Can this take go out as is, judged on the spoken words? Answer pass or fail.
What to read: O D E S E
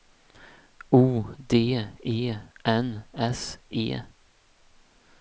fail